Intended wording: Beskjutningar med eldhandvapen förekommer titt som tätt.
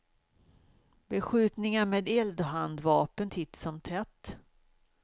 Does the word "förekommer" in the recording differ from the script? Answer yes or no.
yes